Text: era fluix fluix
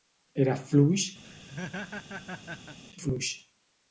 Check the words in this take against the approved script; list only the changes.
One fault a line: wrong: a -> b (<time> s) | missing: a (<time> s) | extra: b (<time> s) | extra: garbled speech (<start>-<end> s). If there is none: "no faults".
no faults